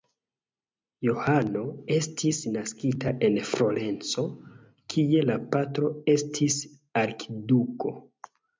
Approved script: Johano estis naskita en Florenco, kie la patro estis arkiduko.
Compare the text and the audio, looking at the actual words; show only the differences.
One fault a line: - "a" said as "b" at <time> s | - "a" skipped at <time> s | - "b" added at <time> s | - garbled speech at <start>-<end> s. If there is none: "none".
none